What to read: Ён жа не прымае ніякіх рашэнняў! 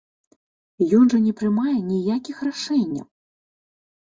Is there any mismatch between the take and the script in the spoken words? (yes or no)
no